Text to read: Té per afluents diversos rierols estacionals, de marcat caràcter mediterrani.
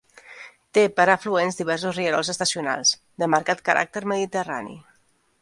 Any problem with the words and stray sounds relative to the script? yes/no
no